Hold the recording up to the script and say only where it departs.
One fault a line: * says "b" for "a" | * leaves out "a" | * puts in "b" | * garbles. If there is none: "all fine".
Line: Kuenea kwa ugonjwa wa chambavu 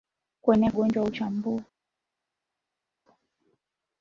* leaves out "kwa"